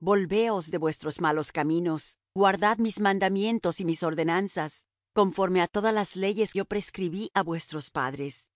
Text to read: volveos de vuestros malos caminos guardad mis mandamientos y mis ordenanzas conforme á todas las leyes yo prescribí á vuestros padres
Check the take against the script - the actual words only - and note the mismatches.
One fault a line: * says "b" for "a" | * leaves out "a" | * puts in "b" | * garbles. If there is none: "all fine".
all fine